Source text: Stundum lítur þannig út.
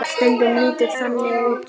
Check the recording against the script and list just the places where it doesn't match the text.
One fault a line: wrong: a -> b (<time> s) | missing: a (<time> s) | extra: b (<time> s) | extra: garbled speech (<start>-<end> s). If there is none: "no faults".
no faults